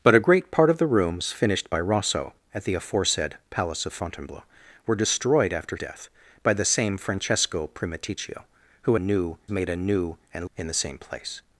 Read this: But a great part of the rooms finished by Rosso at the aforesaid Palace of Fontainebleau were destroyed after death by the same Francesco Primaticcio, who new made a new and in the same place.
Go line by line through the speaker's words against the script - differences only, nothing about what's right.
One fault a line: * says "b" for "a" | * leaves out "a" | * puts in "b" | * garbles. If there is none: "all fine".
all fine